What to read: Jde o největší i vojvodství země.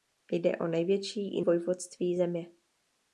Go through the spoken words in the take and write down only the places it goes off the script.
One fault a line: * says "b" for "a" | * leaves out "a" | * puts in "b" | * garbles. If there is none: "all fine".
all fine